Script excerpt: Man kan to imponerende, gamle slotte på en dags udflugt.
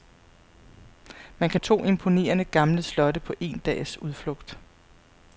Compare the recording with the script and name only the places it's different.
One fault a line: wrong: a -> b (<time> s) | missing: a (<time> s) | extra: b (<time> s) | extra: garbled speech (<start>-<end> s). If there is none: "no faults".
no faults